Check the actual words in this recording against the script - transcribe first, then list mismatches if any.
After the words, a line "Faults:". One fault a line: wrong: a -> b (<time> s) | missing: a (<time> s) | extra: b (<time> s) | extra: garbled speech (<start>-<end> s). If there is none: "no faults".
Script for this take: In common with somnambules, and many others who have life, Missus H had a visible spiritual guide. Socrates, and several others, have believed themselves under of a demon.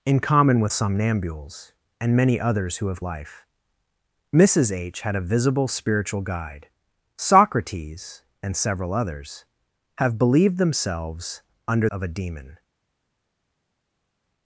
In common with somnambules, and many others who have life, Missus H had a visible spiritual guide. Socrates, and several others, have believed themselves under of a demon.
Faults:
no faults